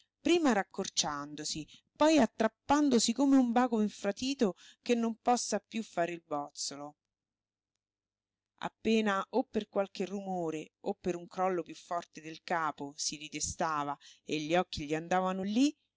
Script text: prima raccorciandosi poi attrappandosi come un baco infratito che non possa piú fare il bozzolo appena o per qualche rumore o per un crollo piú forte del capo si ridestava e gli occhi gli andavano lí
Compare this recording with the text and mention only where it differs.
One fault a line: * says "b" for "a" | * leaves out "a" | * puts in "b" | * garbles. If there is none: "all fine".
all fine